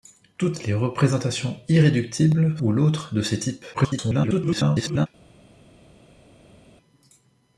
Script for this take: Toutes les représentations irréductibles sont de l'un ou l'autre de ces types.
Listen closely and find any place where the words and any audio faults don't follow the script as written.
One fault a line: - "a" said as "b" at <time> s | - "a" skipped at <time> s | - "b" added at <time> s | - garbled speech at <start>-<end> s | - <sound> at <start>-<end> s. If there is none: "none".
- "sont de l'un" skipped at 2.6 s
- garbled speech at 3.7-5.1 s